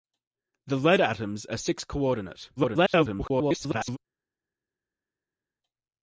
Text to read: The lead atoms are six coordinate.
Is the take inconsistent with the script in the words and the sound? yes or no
yes